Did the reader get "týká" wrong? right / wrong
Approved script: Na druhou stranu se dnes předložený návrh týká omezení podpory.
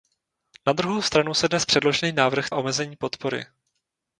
wrong